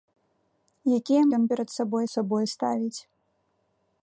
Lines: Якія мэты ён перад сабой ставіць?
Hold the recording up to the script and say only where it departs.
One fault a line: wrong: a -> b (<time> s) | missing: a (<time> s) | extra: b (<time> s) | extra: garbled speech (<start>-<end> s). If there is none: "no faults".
missing: мэты (1.2 s)
extra: сабой (2.1 s)